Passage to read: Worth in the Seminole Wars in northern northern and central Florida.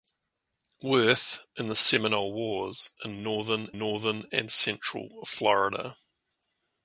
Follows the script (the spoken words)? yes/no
yes